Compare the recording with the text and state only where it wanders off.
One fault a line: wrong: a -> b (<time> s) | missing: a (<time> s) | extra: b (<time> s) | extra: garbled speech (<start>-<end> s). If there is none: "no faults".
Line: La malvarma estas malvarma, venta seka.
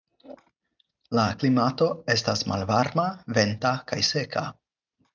wrong: malvarma -> klimato (1.4 s)
extra: kaj (3.9 s)